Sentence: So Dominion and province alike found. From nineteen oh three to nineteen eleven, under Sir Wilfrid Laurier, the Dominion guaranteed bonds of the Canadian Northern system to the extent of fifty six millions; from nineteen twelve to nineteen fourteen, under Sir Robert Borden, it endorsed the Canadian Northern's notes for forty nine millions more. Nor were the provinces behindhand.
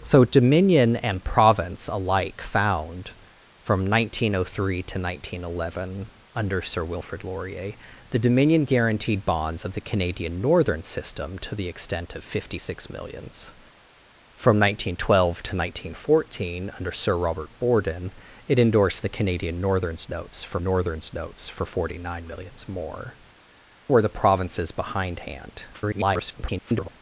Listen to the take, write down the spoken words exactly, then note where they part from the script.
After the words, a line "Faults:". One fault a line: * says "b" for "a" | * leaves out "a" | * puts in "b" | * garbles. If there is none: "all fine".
So Dominion and province alike found. From nineteen oh three to nineteen eleven, under Sir Wilfrid Laurier, the Dominion guaranteed bonds of the Canadian Northern system to the extent of fifty six millions; from nineteen twelve to nineteen fourteen, under Sir Robert Borden, it endorsed the Canadian Northern's notes for Northern's notes for forty nine millions more. Were the provinces behindhand. [garbled]
Faults:
* puts in "Northern's notes for"
* leaves out "Nor"
* garbles